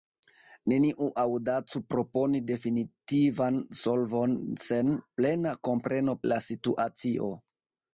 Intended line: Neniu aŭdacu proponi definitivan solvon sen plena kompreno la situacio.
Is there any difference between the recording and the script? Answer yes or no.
no